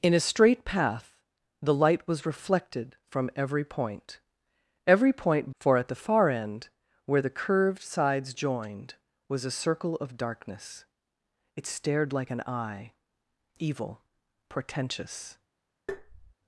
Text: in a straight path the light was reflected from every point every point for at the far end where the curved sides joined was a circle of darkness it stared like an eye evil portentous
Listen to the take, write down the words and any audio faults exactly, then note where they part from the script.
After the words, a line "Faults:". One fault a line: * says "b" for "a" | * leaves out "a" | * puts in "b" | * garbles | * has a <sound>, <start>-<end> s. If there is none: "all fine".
in a straight path the light was reflected from every point every point for at the far end where the curved sides joined was a circle of darkness it stared like an eye evil portentous
Faults:
* has a tap, 15.9-16.3 s